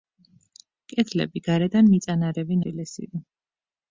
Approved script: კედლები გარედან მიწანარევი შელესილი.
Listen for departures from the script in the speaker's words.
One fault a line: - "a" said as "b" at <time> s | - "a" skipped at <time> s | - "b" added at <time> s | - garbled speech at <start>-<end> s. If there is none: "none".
none